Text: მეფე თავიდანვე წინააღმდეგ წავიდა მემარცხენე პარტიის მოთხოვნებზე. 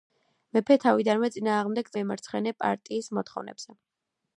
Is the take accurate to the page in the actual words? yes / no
no